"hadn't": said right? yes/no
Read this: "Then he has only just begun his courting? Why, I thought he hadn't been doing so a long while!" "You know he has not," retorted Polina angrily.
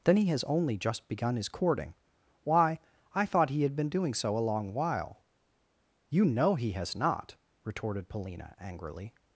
no